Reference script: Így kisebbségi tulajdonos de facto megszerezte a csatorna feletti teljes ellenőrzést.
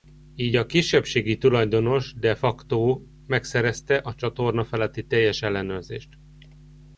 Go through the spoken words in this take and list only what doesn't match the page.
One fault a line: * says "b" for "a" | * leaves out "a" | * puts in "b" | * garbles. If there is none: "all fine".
* puts in "a"